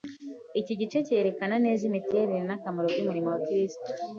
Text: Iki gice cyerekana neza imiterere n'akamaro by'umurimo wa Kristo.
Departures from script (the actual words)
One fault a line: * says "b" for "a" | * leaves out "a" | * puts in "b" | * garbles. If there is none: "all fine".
all fine